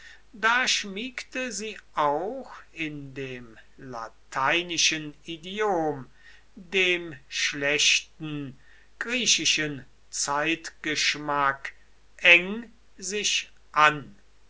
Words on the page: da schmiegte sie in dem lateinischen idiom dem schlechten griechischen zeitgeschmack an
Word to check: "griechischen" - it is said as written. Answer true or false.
true